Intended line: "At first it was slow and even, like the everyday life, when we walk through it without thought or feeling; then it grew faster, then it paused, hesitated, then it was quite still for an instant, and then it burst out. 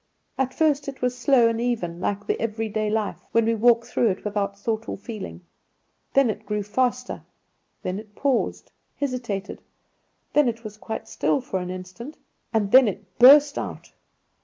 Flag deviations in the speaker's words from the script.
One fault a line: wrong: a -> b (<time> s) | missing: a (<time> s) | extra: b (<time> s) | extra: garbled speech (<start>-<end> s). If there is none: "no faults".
no faults